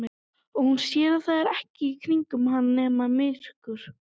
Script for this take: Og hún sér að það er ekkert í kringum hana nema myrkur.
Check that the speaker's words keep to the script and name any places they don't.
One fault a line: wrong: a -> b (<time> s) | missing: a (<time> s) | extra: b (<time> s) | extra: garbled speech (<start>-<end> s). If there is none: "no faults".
no faults